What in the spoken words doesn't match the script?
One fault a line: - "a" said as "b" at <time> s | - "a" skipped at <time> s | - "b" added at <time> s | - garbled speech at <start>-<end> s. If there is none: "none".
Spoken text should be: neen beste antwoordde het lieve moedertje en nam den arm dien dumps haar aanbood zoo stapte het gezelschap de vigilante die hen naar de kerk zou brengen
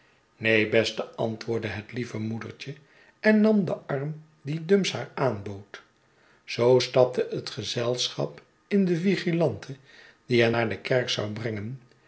- "in" added at 8.7 s